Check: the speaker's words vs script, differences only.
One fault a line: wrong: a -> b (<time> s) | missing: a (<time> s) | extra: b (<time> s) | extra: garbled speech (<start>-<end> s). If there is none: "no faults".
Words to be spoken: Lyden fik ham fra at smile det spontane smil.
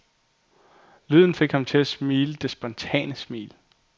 wrong: fra -> til (1.6 s)